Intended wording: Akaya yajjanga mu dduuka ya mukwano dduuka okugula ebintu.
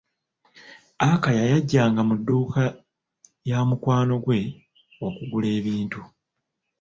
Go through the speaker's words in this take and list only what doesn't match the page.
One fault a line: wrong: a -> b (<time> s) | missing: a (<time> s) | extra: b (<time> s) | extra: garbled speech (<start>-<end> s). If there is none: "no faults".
wrong: dduuka -> gwe (4.2 s)